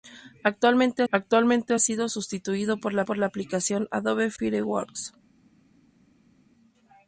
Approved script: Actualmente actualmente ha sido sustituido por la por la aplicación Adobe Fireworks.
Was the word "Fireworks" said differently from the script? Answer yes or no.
no